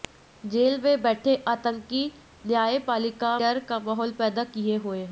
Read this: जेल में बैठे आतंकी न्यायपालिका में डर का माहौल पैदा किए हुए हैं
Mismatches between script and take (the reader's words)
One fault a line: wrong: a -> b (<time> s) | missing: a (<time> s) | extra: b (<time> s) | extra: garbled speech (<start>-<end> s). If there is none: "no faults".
missing: में (3.4 s)